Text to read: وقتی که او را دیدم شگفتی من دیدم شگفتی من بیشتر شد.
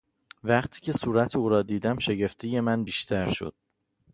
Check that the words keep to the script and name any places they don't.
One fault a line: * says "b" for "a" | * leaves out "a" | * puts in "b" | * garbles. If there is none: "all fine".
* puts in "صورت"
* leaves out "دیدم شگفتی من"